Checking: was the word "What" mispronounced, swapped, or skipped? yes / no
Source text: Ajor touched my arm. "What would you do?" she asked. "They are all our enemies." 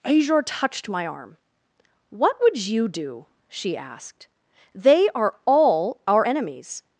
no